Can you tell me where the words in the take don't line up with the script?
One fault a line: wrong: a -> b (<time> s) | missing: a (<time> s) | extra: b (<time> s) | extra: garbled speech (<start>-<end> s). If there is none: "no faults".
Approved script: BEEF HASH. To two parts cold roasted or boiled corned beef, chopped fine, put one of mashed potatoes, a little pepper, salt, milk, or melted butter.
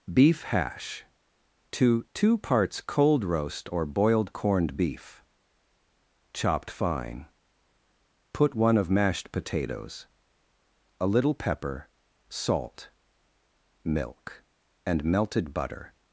wrong: roasted -> roast (3.2 s)
wrong: or -> and (14.8 s)